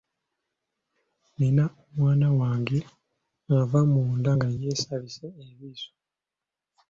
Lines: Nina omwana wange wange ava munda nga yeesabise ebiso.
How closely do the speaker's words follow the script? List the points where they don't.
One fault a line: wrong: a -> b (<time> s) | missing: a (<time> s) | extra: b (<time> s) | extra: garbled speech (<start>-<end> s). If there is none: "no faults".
missing: wange (2.8 s)